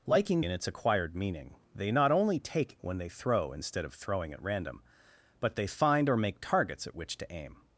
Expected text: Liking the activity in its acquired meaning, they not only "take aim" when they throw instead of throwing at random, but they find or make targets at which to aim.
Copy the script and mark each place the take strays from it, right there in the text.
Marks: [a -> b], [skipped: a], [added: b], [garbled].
Liking [skipped: the activity] in its acquired meaning, they not only "take [skipped: aim"] when they throw instead of throwing at random, but they find or make targets at which to aim.